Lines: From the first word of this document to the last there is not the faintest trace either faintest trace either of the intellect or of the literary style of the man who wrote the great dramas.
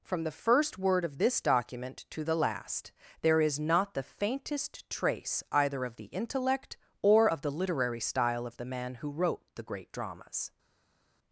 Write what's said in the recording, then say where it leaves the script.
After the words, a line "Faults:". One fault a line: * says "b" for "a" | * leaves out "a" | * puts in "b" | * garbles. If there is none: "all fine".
From the first word of this document to the last there is not the faintest trace either of the intellect or of the literary style of the man who wrote the great dramas.
Faults:
* leaves out "faintest trace either"